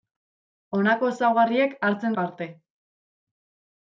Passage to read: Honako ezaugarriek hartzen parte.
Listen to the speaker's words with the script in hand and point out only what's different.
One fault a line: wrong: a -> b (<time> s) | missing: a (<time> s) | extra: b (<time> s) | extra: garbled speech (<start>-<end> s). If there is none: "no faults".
no faults